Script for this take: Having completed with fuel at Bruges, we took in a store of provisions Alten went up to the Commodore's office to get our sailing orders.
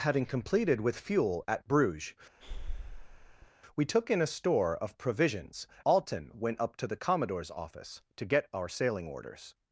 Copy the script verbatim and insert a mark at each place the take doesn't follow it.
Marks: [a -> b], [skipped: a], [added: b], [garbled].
Having completed with fuel at Bruges, we took in a store of provisions Alten went up to the Commodore's office to get our sailing orders.